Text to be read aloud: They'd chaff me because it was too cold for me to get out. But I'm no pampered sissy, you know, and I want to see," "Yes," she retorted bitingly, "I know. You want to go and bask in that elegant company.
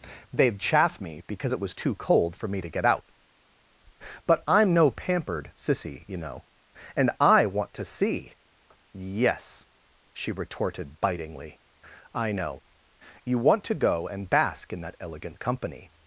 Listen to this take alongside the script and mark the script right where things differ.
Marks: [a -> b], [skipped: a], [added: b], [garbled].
They'd chaff me because it was too cold for me to get out. But I'm no pampered sissy, you know, and I want to see," "Yes," she retorted bitingly, "I know. You want to go and bask in that elegant company.